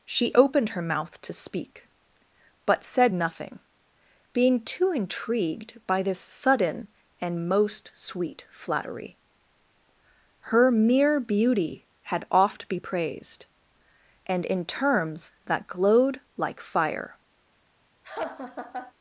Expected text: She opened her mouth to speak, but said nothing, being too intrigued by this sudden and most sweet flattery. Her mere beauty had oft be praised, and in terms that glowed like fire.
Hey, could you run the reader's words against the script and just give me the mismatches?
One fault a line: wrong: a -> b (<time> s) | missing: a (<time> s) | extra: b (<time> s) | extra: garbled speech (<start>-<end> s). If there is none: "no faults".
no faults